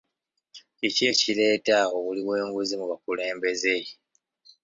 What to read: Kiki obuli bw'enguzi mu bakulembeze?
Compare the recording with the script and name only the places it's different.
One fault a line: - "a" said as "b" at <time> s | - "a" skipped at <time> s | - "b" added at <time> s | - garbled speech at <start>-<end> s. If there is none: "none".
- "ekireeta" added at 1.1 s